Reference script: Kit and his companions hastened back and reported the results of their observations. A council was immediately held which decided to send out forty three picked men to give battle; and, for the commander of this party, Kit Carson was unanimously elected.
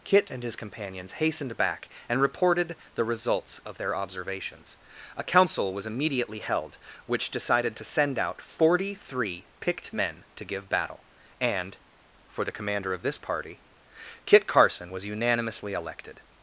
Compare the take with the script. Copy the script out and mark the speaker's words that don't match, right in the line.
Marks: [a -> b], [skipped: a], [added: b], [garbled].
Kit and his companions hastened back and reported the results of their observations. A council was immediately held which decided to send out forty three picked men to give battle; and, for the commander of this party, Kit Carson was unanimously elected.